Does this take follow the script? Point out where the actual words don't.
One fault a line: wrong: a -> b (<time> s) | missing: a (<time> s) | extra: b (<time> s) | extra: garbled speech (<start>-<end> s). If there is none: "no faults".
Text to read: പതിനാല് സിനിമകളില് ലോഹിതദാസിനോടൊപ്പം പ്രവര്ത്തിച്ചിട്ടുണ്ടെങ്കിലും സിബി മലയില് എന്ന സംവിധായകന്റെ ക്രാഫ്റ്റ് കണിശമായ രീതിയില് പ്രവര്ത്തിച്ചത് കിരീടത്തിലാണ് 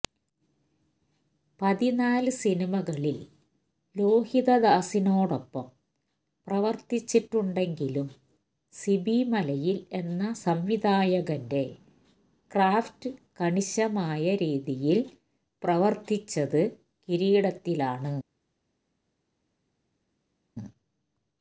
no faults